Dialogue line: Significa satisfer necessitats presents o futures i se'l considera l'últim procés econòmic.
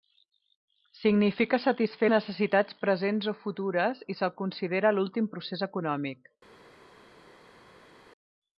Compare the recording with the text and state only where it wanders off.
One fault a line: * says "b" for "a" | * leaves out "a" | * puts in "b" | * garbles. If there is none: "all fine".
all fine